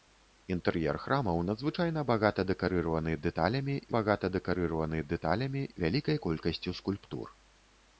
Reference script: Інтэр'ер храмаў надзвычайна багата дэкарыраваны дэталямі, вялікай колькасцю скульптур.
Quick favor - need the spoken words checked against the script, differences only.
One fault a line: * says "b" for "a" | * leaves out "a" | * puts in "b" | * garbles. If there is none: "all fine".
* puts in "багата дэкарыраваны дэталямі"